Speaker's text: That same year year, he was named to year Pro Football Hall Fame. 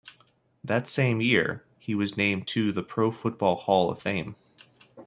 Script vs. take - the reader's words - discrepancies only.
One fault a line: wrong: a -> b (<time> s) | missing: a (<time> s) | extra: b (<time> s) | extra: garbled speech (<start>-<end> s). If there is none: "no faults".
missing: year (1.6 s)
wrong: year -> the (2.7 s)
extra: of (3.9 s)